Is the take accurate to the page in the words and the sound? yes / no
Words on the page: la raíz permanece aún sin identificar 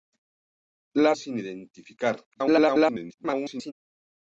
no